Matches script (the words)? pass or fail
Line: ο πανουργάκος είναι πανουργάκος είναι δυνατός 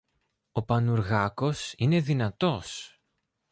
fail